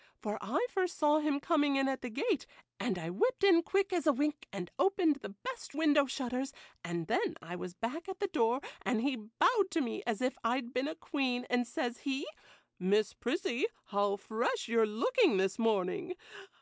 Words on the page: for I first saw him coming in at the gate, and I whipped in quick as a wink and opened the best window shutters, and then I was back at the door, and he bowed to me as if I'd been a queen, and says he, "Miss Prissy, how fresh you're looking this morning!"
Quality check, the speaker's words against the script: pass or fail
pass